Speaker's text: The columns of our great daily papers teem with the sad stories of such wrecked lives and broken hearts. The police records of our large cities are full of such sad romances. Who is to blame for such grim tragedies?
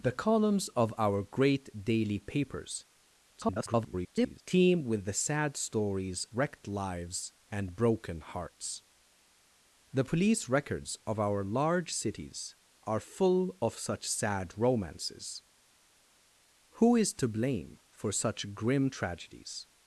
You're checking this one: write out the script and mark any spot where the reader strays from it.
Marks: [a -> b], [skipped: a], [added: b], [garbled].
The columns of our great daily papers [garbled] teem with the sad stories [skipped: of such] wrecked lives and broken hearts. The police records of our large cities are full of such sad romances. Who is to blame for such grim tragedies?